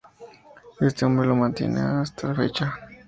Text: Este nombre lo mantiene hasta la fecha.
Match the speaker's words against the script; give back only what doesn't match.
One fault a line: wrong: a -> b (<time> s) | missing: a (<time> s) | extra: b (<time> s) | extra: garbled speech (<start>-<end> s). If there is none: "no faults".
no faults